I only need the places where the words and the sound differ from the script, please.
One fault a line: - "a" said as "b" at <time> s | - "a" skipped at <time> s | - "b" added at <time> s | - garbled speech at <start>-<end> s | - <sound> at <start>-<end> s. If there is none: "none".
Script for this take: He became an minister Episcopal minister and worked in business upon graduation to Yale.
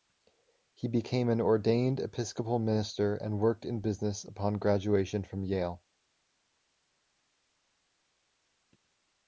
- "minister" said as "ordained" at 1.4 s
- "to" said as "from" at 5.2 s